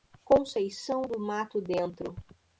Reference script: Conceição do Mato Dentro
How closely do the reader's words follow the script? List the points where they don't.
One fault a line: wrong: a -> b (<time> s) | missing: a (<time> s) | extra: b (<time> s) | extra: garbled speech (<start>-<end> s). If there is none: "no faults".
no faults